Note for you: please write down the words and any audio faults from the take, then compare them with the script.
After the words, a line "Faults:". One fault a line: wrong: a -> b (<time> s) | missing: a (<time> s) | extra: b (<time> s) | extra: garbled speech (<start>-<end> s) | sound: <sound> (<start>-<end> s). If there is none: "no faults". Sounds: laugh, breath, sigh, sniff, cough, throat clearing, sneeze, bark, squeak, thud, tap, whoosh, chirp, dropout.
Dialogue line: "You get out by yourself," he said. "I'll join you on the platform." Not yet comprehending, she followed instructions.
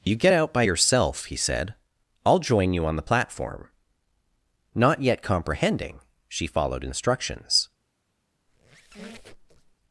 "You get out by yourself," he said. "I'll join you on the platform." Not yet comprehending, she followed instructions.
Faults:
sound: squeak (8.5-9.8 s)